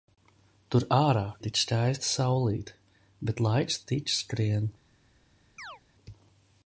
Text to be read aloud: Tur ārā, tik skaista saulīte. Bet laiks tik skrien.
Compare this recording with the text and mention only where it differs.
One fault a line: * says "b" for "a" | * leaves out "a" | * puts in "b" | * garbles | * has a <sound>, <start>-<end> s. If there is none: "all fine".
* has a chirp, 5.6-5.8 s